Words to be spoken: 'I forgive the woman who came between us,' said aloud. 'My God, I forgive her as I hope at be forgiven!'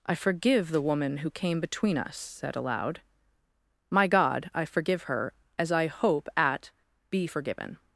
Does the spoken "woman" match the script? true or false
true